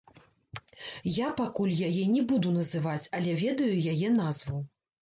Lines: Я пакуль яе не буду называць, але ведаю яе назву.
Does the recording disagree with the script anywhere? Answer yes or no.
no